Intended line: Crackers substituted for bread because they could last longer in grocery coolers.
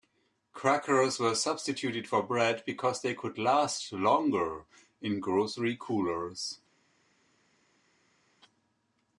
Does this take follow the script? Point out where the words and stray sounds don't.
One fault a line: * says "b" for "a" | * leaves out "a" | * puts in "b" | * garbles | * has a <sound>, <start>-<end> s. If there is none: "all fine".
* puts in "were"